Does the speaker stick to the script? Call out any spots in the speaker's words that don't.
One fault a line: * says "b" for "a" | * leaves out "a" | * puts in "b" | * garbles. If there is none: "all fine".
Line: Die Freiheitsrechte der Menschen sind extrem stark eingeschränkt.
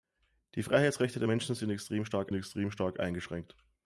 * puts in "extrem stark"